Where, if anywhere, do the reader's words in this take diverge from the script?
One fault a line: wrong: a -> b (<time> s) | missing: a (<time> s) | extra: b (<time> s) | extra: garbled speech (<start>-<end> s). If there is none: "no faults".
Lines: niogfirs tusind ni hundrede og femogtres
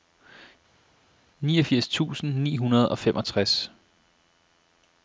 no faults